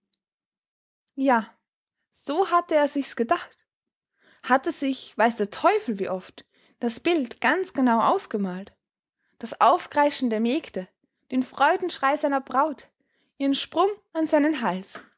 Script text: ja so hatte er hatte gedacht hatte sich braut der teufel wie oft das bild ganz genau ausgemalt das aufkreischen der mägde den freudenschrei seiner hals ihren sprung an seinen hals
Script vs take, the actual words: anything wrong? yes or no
yes